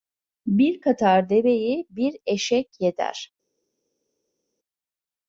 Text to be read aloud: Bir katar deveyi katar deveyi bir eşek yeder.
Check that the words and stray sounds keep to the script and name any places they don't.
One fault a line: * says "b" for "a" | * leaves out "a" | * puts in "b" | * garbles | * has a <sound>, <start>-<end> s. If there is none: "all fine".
* leaves out "katar deveyi"